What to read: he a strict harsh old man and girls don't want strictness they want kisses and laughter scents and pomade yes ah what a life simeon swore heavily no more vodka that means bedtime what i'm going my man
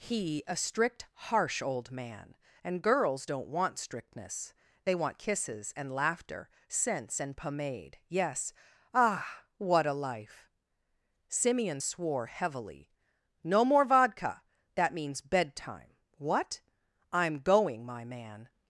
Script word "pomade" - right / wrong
right